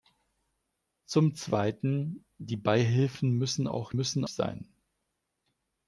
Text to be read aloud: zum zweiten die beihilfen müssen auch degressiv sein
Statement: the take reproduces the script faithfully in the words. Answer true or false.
false